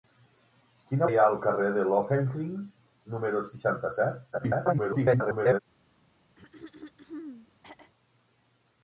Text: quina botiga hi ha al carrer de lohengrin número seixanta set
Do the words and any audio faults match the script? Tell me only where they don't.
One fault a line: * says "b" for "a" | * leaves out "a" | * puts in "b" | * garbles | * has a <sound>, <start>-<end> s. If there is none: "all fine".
* leaves out "botiga"
* garbles
* has a throat clearing, 6.4-7.9 s